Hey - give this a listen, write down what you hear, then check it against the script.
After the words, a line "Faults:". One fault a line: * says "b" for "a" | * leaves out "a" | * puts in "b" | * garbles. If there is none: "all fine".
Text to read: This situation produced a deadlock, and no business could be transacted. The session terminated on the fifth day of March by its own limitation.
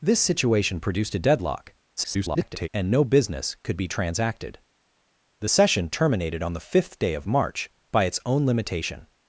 This situation produced a deadlock, [garbled] and no business could be transacted. The session terminated on the fifth day of March by its own limitation.
Faults:
* garbles